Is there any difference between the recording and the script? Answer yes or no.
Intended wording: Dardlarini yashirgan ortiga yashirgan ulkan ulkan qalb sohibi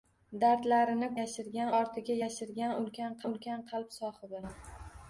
no